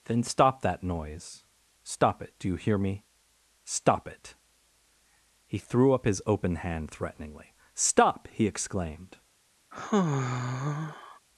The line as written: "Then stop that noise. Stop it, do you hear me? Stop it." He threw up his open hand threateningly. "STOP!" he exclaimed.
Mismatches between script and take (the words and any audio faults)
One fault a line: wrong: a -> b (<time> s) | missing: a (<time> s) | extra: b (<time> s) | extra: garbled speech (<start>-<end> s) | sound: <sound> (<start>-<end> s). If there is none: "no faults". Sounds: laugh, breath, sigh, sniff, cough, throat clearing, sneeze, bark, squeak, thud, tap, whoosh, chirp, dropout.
sound: sigh (9.7-11.2 s)